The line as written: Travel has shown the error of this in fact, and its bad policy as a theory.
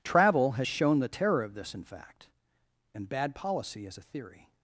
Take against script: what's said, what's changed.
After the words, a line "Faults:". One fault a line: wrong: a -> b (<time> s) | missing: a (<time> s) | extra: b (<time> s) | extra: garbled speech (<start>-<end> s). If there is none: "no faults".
Travel has shown the terror of this in fact, and bad policy as a theory.
Faults:
wrong: error -> terror (1.1 s)
missing: its (3.1 s)